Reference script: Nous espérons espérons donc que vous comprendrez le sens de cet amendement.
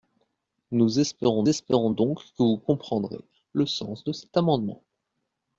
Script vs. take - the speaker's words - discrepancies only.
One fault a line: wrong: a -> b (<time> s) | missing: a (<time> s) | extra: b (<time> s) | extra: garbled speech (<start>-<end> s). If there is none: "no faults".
no faults